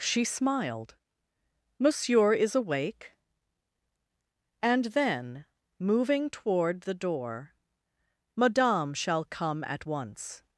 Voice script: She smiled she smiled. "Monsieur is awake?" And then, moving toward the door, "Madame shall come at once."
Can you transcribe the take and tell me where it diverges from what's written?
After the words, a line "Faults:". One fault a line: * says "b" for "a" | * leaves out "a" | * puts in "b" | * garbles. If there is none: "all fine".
She smiled. "Monsieur is awake?" And then, moving toward the door, "Madame shall come at once."
Faults:
* leaves out "she smiled"